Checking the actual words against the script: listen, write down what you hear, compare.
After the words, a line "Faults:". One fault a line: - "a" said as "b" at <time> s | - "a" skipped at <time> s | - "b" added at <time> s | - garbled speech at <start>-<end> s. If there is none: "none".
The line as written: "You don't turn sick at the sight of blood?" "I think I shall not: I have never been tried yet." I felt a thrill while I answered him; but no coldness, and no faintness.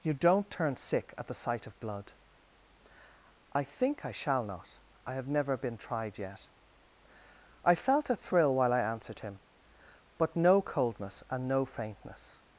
"You don't turn sick at the sight of blood?" "I think I shall not: I have never been tried yet." I felt a thrill while I answered him; but no coldness, and no faintness.
Faults:
none